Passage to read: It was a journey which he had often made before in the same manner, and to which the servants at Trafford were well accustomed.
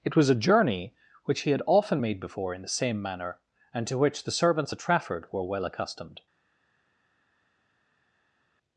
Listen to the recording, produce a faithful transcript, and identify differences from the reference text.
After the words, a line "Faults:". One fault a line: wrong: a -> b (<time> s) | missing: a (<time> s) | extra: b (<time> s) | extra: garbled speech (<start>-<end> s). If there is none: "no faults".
It was a journey which he had often made before in the same manner, and to which the servants at Trafford were well accustomed.
Faults:
no faults